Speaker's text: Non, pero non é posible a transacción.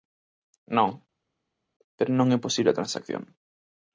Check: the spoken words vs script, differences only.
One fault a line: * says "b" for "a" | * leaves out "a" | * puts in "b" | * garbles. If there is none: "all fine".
all fine